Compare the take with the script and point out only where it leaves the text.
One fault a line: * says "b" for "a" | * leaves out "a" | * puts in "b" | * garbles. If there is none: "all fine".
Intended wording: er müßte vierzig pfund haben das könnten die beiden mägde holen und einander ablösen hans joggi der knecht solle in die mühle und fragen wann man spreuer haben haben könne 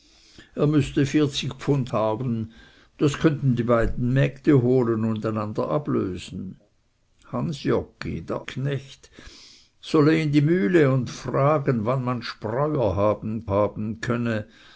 all fine